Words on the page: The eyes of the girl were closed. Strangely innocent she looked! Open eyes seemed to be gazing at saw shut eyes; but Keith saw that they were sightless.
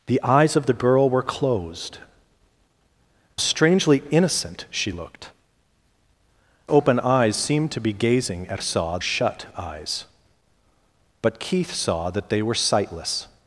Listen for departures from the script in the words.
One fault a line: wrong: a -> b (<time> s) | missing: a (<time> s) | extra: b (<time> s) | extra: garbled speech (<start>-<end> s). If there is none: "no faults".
no faults